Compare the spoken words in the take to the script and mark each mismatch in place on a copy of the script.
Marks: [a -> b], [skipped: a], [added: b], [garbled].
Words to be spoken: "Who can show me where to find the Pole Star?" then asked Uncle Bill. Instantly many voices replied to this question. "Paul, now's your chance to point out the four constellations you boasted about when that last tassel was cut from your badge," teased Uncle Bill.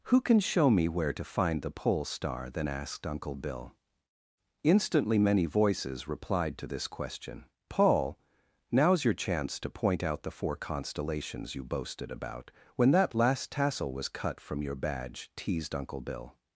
"Who can show me where to find the Pole Star?" then asked Uncle Bill. Instantly many voices replied to this question. "Paul, now's your chance to point out the four constellations you boasted about when that last tassel was cut from your badge," teased Uncle Bill.